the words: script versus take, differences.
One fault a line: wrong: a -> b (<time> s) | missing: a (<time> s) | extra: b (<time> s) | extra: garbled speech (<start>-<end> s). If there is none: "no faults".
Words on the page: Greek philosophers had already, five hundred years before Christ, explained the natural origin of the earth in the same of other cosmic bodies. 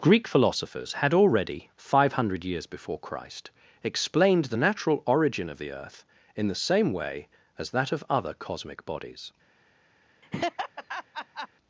extra: way as that (6.9 s)